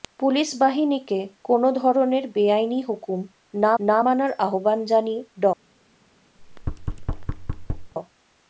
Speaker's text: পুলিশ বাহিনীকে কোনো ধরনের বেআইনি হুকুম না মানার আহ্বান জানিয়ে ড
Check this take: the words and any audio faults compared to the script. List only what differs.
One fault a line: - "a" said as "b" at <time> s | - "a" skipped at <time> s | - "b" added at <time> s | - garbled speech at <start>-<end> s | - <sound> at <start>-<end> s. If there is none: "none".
- "না" added at 3.8 s
- thud at 6.4-7.9 s